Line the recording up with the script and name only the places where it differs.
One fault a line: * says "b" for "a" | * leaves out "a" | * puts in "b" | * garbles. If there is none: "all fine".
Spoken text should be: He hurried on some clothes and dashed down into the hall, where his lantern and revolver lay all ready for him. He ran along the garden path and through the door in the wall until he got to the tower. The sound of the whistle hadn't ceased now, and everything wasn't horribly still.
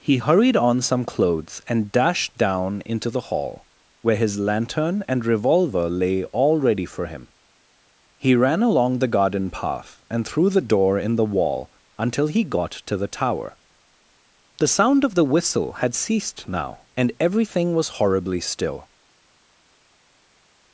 * says "had" for "hadn't"
* says "was" for "wasn't"